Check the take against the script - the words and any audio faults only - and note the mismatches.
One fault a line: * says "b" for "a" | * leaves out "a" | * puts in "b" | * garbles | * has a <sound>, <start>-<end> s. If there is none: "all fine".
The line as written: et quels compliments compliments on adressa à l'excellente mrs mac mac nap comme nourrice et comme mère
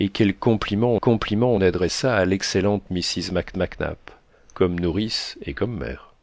all fine